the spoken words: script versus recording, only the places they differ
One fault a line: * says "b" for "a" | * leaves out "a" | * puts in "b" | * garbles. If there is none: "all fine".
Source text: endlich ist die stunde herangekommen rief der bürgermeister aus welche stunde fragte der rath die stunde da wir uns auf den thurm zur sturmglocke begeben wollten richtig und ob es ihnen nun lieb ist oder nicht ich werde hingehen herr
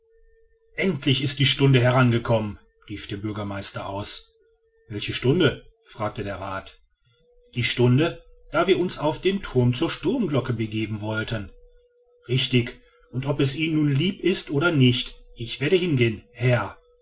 all fine